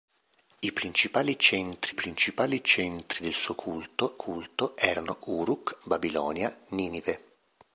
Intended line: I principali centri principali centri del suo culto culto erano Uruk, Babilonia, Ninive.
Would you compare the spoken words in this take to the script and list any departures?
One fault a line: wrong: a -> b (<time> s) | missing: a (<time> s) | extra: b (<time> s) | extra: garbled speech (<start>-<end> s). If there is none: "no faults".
no faults